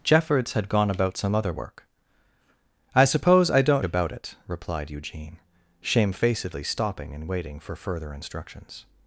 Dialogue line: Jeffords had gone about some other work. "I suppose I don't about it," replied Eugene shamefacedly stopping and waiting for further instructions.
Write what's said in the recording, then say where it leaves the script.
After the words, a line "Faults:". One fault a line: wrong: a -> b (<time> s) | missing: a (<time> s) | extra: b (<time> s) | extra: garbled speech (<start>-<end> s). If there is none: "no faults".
Jeffords had gone about some other work. "I suppose I don't about it," replied Eugene shamefacedly stopping and waiting for further instructions.
Faults:
no faults